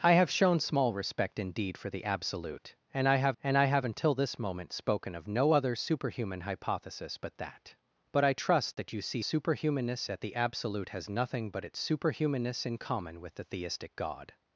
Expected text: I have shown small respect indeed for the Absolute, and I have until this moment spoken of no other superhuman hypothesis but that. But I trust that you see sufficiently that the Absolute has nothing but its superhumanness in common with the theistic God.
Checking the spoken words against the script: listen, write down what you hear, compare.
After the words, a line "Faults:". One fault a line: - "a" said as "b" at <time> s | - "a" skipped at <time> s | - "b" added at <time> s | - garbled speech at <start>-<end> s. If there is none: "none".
I have shown small respect indeed for the Absolute, and I have and I have until this moment spoken of no other superhuman hypothesis but that. But I trust that you see superhumanness that the Absolute has nothing but its superhumanness in common with the theistic God.
Faults:
- "and I have" added at 3.4 s
- "sufficiently" said as "superhumanness" at 9.2 s